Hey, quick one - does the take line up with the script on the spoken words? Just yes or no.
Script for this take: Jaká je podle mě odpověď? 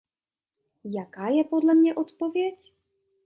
yes